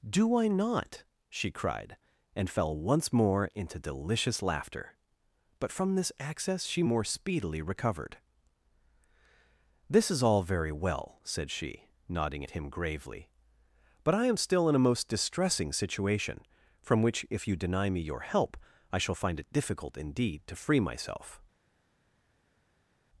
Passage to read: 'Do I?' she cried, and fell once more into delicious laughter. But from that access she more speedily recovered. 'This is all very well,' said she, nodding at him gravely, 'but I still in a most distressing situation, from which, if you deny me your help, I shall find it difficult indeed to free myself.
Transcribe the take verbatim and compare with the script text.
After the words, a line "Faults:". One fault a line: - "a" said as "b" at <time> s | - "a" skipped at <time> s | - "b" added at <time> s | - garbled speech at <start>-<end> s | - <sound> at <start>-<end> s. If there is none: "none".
'Do I not?' she cried, and fell once more into delicious laughter. But from this access she more speedily recovered. 'This is all very well,' said she, nodding at him gravely, 'but I am still in a most distressing situation, from which, if you deny me your help, I shall find it difficult indeed to free myself.
Faults:
- "not" added at 0.5 s
- "that" said as "this" at 6.0 s
- "am" added at 14.3 s